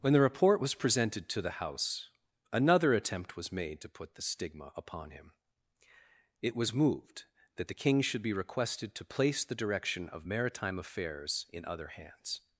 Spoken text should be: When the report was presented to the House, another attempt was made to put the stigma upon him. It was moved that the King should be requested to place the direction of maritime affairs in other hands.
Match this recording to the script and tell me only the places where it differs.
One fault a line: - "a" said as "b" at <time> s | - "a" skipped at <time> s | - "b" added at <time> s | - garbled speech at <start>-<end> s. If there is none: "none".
none